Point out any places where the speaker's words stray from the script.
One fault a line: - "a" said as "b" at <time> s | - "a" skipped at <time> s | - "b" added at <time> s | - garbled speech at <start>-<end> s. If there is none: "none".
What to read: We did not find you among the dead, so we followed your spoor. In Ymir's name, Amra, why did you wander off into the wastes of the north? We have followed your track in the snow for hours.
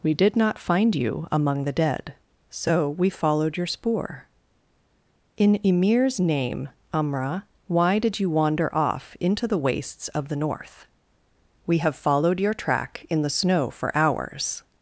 none